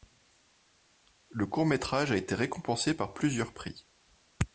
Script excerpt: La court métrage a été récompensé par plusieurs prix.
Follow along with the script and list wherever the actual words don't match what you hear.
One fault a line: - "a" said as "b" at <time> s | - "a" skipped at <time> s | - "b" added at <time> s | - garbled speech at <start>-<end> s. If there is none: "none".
- "La" said as "Le" at 1.3 s